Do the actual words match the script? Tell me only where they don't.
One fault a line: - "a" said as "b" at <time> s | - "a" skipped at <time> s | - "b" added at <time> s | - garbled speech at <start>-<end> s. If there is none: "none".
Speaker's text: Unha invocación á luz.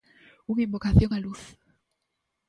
none